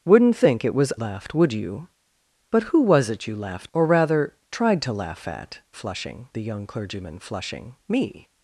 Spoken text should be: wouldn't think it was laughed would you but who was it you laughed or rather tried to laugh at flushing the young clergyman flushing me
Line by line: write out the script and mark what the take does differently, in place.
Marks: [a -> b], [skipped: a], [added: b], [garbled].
wouldn't think it was laughed would you but who was it you laughed or rather tried to laugh at flushing the young clergyman flushing me